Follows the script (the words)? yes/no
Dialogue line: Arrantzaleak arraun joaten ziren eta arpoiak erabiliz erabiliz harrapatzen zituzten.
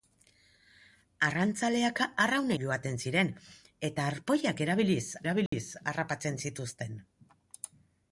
yes